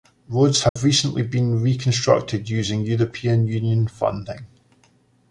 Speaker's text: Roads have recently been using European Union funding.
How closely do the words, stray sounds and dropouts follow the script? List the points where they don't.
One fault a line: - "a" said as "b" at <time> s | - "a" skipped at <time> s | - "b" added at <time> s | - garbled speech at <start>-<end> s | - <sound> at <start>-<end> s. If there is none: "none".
- dropout at 0.7-0.8 s
- "reconstructed" added at 1.6 s